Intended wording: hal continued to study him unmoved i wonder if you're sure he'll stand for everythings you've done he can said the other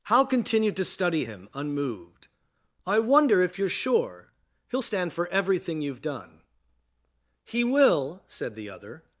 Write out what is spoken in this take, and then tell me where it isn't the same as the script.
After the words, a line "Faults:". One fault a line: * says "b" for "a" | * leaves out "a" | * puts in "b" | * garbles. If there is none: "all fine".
hal continued to study him unmoved i wonder if you're sure he'll stand for everything you've done he will said the other
Faults:
* says "everything" for "everythings"
* says "will" for "can"